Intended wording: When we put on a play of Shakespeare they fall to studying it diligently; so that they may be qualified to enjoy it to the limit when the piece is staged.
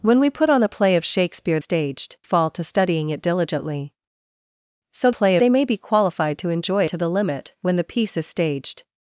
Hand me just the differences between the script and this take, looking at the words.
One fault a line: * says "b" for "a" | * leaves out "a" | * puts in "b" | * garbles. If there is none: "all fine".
* says "staged" for "they"
* says "play" for "that"
* leaves out "it"